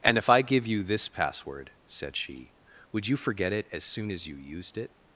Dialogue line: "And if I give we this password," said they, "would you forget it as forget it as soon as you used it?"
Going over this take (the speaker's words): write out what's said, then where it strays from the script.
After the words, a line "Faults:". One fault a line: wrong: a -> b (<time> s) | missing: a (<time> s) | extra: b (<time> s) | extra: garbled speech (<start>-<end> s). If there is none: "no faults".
"And if I give you this password," said she, "would you forget it as soon as you used it?"
Faults:
wrong: we -> you (0.7 s)
wrong: they -> she (2.2 s)
missing: forget it as (3.8 s)